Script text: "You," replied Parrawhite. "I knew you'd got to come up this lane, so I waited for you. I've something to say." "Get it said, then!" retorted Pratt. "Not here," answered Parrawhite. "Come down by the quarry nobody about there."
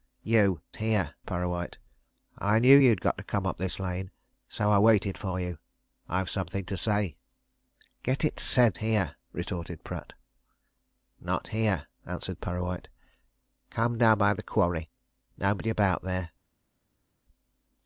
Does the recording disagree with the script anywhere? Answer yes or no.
yes